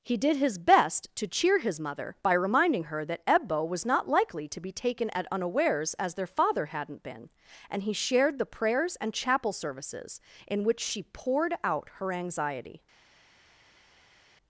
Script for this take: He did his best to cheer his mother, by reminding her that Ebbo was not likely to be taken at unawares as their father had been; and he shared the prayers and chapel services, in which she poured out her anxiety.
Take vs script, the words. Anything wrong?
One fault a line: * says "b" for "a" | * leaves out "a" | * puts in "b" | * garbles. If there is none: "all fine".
* says "hadn't" for "had"